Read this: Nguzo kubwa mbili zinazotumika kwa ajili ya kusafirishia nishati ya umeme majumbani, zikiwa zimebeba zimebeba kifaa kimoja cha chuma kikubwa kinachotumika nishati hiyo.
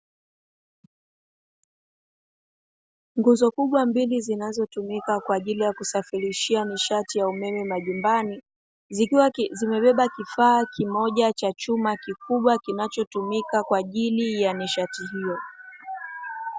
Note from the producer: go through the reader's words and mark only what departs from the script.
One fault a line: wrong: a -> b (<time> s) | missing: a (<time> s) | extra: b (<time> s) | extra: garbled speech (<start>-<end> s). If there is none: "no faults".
missing: zimebeba (10.1 s)
extra: kwa ajili ya (13.6 s)